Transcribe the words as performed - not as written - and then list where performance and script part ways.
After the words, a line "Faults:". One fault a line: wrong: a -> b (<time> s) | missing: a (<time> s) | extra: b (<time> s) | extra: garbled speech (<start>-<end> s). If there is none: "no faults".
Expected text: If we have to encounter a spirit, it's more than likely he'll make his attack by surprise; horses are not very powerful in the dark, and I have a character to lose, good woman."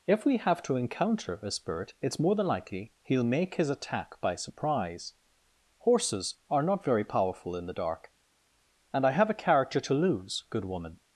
If we have to encounter a spirit, it's more than likely he'll make his attack by surprise; horses are not very powerful in the dark, and I have a character to lose, good woman."
Faults:
no faults